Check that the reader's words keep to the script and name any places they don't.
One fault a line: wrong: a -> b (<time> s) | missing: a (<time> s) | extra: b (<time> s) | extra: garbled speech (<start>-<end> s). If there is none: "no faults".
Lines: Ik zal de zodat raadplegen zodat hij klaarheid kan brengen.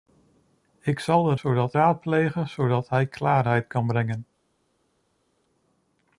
no faults